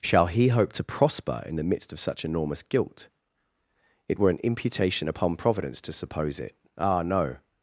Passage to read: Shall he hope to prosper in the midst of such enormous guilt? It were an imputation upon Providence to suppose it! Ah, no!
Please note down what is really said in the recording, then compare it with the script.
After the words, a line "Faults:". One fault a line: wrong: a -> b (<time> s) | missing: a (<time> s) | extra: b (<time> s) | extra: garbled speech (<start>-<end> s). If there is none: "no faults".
Shall he hope to prosper in the midst of such enormous guilt? It were an imputation upon Providence to suppose it! Ah, no!
Faults:
no faults